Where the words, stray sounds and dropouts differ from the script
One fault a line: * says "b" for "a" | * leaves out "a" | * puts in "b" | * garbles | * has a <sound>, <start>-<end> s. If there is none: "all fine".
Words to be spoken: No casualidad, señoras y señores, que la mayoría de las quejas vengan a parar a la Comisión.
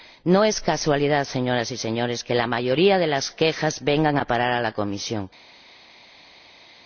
* puts in "es"